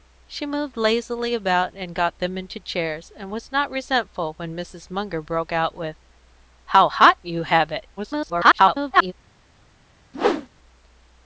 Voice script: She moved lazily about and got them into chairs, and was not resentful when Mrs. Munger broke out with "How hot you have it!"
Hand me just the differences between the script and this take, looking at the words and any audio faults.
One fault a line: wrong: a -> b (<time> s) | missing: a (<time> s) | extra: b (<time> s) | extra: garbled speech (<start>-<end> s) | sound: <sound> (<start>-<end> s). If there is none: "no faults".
extra: garbled speech (8.0-9.1 s)
sound: whoosh (10.1-10.5 s)